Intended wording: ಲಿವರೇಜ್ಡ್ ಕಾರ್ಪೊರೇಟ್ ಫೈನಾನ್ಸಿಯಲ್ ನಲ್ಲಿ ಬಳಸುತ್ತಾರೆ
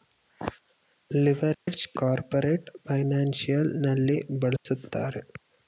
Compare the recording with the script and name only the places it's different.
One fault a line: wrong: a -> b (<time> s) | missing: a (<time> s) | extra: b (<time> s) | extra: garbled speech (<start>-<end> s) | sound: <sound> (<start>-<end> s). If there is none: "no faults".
sound: dropout (1.5-1.7 s)
sound: dropout (4.6-4.7 s)